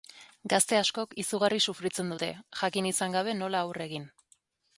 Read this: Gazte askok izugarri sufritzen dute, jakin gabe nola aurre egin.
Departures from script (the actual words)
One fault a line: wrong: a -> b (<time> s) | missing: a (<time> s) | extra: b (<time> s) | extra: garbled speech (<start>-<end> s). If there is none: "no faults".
extra: izan (2.9 s)